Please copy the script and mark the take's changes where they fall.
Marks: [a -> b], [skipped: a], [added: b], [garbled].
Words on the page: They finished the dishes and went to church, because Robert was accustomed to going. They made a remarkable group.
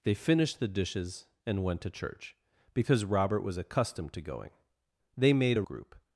They finished the dishes and went to church, because Robert was accustomed to going. They made a [skipped: remarkable] group.